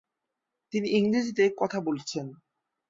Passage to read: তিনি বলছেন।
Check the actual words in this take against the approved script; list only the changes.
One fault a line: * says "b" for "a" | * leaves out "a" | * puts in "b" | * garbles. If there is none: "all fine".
* puts in "ইংরেজিতে কথা"